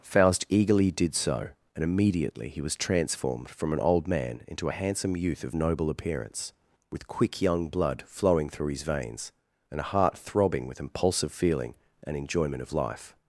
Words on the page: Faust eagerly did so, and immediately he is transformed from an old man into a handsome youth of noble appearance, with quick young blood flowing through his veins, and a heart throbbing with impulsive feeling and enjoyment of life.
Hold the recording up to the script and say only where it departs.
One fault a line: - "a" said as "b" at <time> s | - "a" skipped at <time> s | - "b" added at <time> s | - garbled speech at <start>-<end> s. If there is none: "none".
- "is" said as "was" at 2.6 s